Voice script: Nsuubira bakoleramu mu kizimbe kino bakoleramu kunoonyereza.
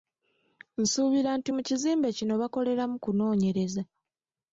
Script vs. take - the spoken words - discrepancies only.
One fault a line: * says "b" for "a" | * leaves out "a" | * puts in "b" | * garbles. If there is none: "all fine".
* says "nti" for "bakoleramu"